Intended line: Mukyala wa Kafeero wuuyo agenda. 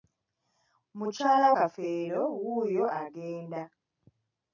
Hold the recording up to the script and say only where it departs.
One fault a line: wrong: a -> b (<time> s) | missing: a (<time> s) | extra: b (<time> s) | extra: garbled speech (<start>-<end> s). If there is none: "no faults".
missing: wa (1.5 s)